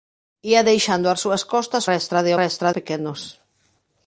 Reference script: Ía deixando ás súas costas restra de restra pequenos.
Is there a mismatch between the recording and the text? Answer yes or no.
no